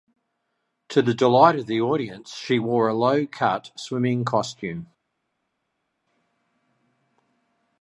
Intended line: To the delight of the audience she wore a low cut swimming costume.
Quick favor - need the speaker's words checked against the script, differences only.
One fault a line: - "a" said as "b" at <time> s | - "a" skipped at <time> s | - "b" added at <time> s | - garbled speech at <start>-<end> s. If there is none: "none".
none